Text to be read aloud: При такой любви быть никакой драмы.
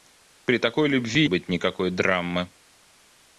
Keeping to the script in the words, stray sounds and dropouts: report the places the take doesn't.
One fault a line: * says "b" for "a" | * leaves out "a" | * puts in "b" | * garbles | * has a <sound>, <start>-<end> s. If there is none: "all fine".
all fine